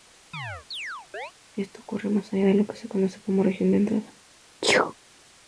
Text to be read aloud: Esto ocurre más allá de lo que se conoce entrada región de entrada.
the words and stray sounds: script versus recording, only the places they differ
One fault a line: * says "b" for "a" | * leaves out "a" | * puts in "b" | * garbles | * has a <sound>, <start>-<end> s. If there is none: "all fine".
* has a chirp, 0.3-1.3 s
* says "como" for "entrada"
* has a sneeze, 4.6-4.9 s